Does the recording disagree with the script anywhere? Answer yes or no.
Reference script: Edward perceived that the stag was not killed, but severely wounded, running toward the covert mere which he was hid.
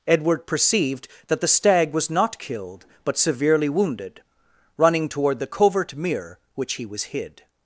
no